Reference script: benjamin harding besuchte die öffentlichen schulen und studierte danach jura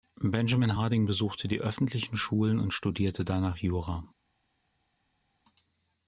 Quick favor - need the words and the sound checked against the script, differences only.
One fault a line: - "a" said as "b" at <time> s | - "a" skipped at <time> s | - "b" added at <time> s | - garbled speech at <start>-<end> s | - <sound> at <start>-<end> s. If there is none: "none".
none